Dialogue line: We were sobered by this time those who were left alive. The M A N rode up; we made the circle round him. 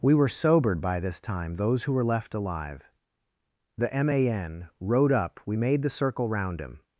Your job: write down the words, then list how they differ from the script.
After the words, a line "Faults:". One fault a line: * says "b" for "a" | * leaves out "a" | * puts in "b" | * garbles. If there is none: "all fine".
We were sobered by this time those who were left alive. The M A N rode up; we made the circle round him.
Faults:
all fine